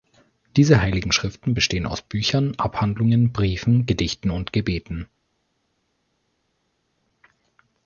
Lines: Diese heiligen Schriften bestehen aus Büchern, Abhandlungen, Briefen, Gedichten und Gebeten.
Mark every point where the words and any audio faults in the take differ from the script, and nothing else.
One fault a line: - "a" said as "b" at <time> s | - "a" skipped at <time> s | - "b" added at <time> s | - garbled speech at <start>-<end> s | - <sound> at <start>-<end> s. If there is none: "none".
none